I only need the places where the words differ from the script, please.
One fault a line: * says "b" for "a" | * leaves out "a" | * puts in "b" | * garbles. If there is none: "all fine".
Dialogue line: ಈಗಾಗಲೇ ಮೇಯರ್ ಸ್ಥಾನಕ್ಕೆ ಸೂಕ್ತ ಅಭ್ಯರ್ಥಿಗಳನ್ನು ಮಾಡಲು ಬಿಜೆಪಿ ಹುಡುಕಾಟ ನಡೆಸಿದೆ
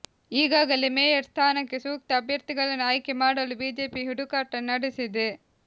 * puts in "ಆಯ್ಕೆ"